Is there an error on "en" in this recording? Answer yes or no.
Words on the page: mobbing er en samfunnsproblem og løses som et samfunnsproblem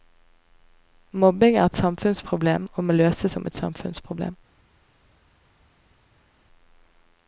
yes